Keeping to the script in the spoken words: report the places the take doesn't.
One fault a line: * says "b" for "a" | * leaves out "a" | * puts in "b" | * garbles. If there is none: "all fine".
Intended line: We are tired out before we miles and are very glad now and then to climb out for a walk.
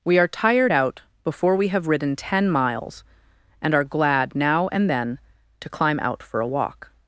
* puts in "have ridden ten"
* leaves out "very"